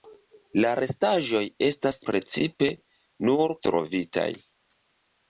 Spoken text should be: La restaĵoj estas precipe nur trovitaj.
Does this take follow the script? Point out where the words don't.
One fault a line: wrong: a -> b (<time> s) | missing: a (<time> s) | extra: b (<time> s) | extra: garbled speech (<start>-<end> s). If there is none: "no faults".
no faults